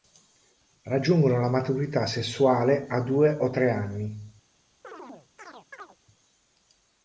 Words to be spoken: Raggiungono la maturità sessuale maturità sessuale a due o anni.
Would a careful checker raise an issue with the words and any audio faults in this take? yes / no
yes